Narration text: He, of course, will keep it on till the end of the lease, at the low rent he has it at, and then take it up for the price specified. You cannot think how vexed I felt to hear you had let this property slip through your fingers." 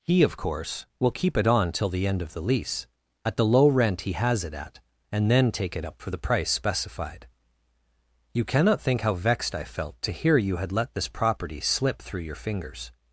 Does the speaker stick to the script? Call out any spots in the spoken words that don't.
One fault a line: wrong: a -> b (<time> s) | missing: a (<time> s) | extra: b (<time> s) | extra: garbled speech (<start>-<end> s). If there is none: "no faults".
no faults